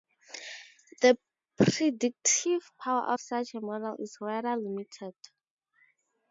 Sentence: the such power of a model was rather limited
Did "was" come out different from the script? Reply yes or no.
yes